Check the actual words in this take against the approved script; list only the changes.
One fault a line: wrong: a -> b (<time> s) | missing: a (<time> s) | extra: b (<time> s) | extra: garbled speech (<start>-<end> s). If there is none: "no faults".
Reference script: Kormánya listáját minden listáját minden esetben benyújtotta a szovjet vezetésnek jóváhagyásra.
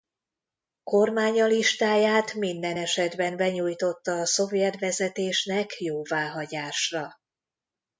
missing: listáját minden (2.8 s)